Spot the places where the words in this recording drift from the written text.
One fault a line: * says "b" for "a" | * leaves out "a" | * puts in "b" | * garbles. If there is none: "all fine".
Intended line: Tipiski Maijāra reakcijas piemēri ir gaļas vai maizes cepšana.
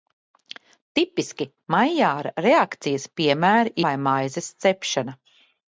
* leaves out "ir gaļas"